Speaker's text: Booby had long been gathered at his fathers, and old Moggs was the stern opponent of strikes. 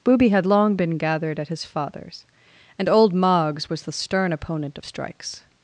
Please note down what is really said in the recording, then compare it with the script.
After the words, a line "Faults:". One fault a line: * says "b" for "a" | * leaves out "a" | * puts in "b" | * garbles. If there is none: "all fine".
Booby had long been gathered at his fathers, and old Moggs was the stern opponent of strikes.
Faults:
all fine